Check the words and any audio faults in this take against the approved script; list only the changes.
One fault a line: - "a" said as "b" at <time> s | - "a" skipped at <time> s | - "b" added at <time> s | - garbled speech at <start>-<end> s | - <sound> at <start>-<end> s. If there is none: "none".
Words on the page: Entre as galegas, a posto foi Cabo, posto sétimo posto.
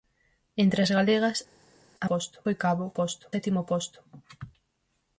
none